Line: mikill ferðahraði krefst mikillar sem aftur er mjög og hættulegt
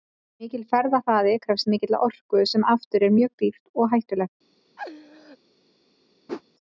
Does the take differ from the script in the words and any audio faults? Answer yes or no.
yes